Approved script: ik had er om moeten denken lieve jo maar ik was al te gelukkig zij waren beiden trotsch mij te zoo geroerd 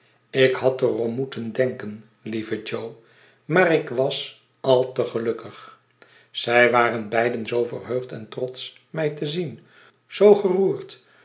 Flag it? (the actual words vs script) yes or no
yes